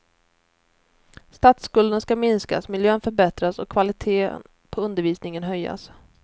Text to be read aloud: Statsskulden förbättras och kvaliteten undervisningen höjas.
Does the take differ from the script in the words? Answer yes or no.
yes